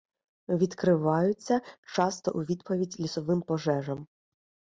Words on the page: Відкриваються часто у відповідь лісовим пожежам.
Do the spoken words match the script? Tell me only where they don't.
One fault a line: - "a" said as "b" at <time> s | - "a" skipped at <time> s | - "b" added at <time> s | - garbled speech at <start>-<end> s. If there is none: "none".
none